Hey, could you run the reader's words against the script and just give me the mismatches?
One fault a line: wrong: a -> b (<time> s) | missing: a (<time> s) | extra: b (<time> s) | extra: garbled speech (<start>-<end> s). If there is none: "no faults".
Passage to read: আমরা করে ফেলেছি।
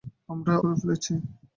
no faults